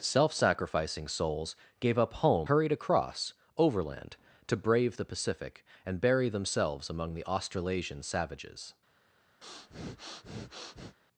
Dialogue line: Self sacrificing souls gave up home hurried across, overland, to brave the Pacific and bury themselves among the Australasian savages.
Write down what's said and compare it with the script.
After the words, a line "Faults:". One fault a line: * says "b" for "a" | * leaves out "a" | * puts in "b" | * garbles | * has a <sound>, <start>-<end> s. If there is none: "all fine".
Self sacrificing souls gave up home hurried across, overland, to brave the Pacific and bury themselves among the Australasian savages.
Faults:
* has a breath, 9.4-11.0 s